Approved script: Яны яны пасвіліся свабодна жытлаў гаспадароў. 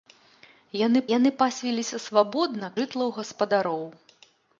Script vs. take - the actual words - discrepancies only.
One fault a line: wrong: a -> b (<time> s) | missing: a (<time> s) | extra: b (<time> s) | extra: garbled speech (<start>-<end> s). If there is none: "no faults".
no faults